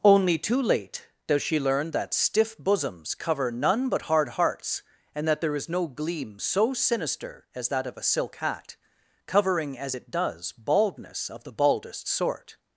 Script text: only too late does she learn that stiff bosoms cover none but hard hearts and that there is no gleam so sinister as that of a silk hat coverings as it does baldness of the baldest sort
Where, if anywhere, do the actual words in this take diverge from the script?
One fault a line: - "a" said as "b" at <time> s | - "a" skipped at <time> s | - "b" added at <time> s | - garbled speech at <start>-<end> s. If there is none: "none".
- "coverings" said as "covering" at 9.3 s